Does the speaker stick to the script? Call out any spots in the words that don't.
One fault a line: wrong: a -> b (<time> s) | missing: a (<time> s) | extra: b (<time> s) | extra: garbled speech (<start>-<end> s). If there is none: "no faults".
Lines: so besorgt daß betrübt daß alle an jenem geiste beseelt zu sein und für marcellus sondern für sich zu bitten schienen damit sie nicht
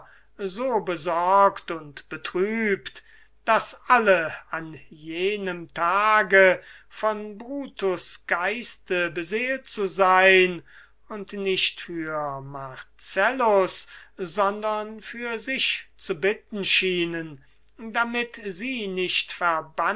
wrong: daß -> und (1.7 s)
extra: tage von brutus (5.7 s)
extra: nicht (11.3 s)